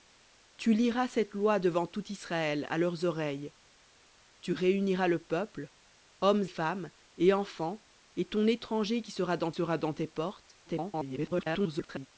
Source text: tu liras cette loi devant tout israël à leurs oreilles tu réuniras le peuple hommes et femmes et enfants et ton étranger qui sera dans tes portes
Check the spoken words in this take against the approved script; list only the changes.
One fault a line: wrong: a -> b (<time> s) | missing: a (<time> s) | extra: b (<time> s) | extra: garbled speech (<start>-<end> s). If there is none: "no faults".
missing: et (6.5 s)
extra: sera dans (9.5 s)
extra: garbled speech (10.7-12.1 s)